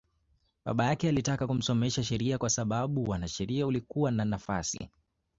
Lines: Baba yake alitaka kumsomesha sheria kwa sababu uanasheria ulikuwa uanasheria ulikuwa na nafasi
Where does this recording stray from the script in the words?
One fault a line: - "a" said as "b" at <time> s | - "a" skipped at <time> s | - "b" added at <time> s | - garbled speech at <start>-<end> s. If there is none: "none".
- "uanasheria ulikuwa" skipped at 4.1 s